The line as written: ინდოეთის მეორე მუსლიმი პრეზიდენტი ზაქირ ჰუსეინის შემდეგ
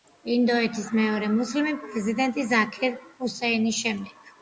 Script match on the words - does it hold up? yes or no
yes